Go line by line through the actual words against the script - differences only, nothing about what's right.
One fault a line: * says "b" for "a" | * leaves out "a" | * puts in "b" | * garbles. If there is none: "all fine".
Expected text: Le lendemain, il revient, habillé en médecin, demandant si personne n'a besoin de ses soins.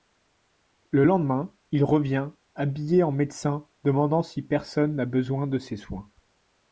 all fine